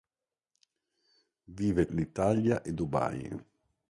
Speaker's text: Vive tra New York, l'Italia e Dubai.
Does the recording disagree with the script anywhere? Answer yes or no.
yes